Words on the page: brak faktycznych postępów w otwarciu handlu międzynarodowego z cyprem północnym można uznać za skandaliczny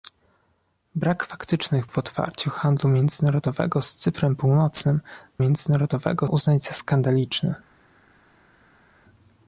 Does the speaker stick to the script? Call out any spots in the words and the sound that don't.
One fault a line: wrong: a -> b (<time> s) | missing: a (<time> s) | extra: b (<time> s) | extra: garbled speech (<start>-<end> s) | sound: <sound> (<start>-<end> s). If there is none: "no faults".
missing: postępów (1.9 s)
wrong: można -> międzynarodowego (5.4 s)